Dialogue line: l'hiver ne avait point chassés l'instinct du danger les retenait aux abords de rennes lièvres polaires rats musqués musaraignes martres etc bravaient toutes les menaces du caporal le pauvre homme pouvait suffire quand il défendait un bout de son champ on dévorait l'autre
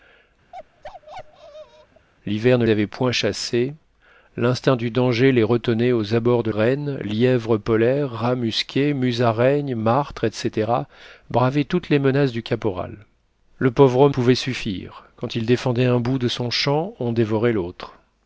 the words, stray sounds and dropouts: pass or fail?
fail